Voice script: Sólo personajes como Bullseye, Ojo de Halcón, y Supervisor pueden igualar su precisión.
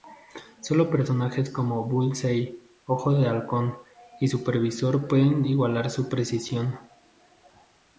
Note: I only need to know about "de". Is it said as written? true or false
true